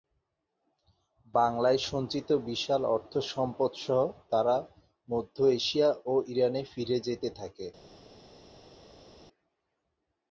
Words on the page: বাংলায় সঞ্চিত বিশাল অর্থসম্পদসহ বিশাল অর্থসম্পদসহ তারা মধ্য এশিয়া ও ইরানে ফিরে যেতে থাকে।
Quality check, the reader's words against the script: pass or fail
fail